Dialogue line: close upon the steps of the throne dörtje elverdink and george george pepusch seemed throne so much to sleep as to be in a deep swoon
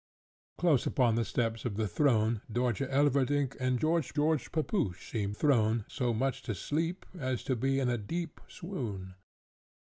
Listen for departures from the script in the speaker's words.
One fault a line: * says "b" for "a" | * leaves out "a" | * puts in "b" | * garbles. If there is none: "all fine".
all fine